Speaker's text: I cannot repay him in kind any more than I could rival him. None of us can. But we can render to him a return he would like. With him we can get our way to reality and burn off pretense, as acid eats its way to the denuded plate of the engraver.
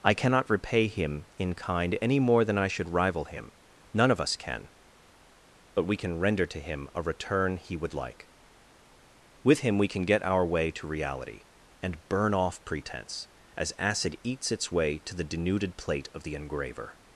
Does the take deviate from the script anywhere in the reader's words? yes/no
yes